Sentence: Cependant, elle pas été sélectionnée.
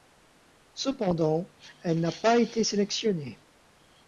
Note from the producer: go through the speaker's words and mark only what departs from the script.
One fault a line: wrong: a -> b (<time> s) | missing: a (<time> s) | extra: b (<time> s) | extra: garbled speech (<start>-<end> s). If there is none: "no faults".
extra: n'a (2.0 s)